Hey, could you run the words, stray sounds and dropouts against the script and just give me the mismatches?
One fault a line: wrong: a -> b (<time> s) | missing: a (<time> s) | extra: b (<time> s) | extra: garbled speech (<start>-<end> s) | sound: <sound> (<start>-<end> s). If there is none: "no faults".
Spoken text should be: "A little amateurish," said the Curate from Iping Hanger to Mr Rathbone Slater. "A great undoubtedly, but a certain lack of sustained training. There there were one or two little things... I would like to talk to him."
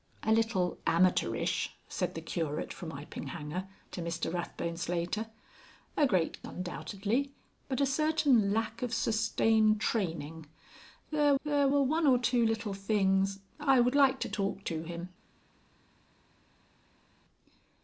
no faults